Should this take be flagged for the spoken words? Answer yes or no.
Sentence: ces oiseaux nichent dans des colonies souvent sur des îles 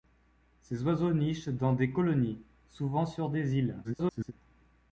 yes